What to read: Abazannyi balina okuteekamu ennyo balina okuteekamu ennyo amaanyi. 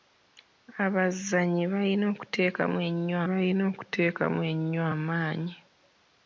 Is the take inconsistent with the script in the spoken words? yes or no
no